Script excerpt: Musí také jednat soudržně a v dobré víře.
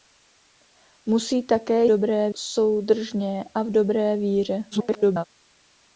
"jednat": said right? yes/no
no